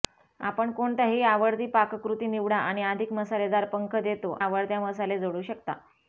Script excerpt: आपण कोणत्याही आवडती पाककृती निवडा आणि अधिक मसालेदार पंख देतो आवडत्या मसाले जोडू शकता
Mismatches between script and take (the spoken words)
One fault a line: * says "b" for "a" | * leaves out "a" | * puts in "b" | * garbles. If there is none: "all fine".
all fine